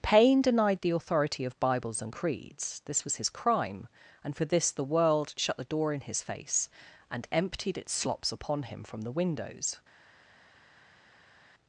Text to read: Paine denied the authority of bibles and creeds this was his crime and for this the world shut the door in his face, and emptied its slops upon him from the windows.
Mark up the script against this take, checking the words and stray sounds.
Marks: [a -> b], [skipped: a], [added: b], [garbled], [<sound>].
Paine denied the authority of bibles and creeds this was his crime and for this the world shut the door in his face, and emptied its slops upon him from the windows.